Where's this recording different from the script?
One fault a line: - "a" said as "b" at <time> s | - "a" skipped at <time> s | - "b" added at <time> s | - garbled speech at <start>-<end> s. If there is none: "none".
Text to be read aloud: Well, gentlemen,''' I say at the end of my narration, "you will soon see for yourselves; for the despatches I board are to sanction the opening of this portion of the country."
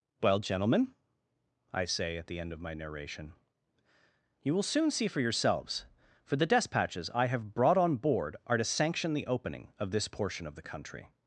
- "have brought on" added at 7.3 s